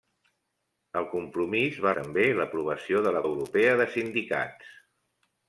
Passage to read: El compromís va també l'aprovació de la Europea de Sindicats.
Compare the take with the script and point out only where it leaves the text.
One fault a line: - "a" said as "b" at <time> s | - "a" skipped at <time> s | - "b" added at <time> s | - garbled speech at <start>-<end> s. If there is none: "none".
none